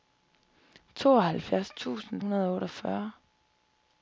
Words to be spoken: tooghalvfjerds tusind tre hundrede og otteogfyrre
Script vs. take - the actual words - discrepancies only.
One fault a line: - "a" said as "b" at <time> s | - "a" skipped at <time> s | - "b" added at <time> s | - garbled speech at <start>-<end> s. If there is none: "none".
- "tre" skipped at 2.2 s